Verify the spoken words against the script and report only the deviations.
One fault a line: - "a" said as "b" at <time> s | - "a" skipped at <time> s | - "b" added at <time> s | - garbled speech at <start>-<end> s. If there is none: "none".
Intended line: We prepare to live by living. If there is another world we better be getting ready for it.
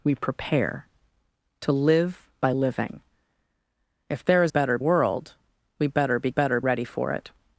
- "another" said as "better" at 4.5 s
- "getting" said as "better" at 6.3 s